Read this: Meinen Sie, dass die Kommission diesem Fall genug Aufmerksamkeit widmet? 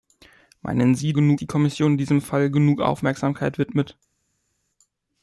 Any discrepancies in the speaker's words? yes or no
yes